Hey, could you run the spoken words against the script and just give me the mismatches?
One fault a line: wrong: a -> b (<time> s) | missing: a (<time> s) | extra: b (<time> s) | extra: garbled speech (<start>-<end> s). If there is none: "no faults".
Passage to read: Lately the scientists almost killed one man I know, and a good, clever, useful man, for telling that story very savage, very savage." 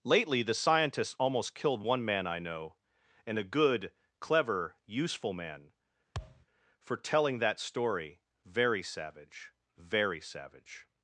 no faults